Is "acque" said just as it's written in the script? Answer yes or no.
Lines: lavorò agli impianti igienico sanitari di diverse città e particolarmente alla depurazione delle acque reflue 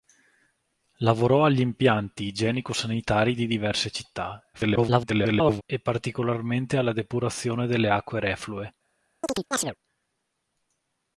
yes